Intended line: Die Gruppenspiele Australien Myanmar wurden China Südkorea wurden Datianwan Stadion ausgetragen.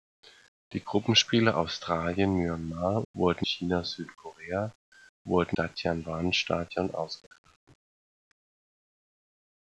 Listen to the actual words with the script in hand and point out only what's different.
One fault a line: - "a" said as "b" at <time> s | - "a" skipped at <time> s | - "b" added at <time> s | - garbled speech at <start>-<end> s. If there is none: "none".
none